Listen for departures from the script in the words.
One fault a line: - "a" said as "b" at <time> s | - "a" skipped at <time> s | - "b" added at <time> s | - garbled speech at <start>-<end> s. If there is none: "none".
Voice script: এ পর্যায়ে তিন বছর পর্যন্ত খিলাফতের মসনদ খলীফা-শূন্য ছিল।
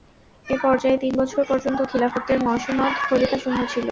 none